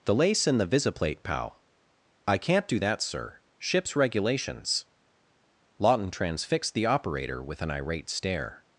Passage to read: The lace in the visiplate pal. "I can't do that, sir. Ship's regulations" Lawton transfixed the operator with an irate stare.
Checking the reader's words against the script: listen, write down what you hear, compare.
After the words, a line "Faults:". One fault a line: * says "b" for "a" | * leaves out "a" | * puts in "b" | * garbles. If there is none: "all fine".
The lace in the visiplate pal. "I can't do that, sir. Ship's regulations" Lawton transfixed the operator with an irate stare.
Faults:
all fine